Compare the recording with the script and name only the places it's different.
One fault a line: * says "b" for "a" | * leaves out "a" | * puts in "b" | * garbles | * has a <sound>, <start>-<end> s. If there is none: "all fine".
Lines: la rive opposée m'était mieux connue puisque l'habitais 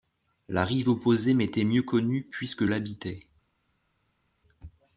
all fine